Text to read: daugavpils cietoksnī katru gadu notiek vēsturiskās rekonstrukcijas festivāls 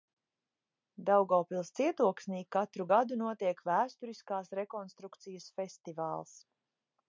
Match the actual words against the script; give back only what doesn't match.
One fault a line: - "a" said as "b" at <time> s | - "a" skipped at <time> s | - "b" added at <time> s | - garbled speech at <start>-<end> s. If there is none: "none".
none